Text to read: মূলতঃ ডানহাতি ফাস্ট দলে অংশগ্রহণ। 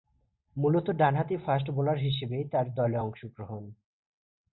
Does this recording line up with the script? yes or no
no